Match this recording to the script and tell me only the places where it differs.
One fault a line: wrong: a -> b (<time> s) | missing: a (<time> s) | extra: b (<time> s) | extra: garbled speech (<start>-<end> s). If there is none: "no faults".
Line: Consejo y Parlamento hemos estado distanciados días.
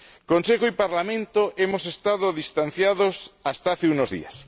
extra: hasta hace unos (3.4 s)